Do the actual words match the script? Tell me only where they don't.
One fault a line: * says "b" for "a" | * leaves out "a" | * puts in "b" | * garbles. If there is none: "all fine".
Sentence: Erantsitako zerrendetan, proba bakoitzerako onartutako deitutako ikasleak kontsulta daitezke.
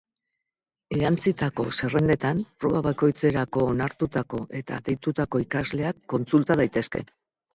* puts in "eta"